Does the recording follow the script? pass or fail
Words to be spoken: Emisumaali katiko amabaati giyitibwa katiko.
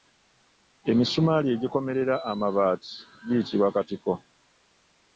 fail